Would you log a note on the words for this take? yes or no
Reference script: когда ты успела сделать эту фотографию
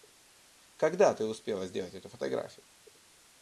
no